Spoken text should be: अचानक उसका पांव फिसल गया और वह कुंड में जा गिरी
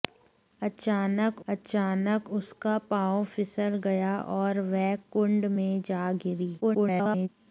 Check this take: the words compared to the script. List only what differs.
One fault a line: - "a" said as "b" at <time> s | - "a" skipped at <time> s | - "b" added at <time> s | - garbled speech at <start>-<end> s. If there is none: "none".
- "अचानक" added at 1.5 s
- garbled speech at 6.6-7.3 s